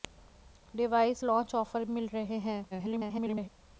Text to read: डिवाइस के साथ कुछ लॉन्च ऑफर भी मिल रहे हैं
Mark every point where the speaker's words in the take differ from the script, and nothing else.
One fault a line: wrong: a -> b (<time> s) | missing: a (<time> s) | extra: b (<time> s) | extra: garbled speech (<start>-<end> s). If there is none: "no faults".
missing: के साथ कुछ (1.2 s)
missing: भी (1.8 s)
extra: garbled speech (2.7-3.5 s)